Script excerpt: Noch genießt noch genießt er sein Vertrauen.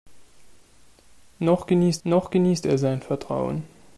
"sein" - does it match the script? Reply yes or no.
yes